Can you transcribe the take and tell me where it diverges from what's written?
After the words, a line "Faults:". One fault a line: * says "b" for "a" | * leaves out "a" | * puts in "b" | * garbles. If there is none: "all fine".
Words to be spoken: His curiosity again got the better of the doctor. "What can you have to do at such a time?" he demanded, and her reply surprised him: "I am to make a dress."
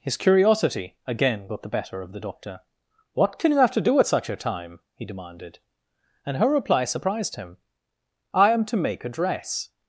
His curiosity again got the better of the doctor. "What can you have to do at such a time?" he demanded, and her reply surprised him: "I am to make a dress."
Faults:
all fine